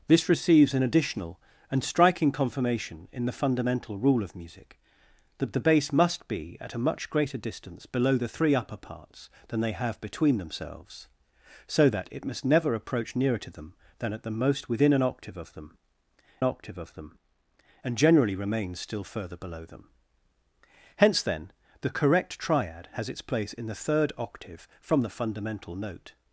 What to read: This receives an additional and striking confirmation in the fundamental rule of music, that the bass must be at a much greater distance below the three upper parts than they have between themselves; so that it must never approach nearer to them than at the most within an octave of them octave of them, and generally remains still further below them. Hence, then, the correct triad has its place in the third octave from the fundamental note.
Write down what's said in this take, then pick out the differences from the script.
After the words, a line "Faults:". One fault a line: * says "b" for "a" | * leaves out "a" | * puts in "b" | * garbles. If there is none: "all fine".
This receives an additional and striking confirmation in the fundamental rule of music, that the bass must be at a much greater distance below the three upper parts than they have between themselves; so that it must never approach nearer to them than at the most within an octave of them octave of them, and generally remains still further below them. Hence, then, the correct triad has its place in the third octave from the fundamental note.
Faults:
all fine